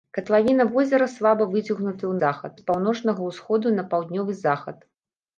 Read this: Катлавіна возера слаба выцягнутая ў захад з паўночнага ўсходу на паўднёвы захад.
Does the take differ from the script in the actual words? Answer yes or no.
no